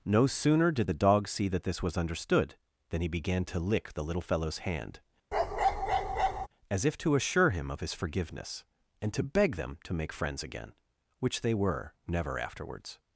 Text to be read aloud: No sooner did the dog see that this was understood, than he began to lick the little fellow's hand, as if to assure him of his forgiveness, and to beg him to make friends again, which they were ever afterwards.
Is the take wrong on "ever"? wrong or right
wrong